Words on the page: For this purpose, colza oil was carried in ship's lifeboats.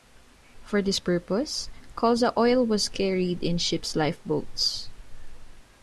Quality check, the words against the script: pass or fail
pass